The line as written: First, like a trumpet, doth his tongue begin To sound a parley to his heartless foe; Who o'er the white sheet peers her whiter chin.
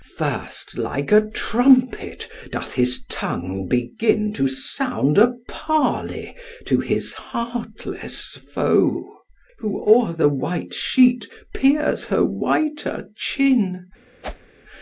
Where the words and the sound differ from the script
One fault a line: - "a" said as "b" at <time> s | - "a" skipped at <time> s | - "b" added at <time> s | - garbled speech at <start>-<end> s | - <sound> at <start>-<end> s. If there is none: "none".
- whoosh at 14.2-14.5 s